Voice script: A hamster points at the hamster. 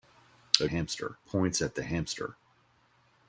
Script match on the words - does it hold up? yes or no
yes